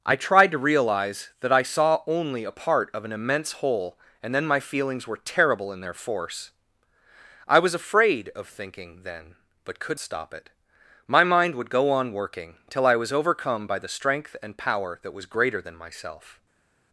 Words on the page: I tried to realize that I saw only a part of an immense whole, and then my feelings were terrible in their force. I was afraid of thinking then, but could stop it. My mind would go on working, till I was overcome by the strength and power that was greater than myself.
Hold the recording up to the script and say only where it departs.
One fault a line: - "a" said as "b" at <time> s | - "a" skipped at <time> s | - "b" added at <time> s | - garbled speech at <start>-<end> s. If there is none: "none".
none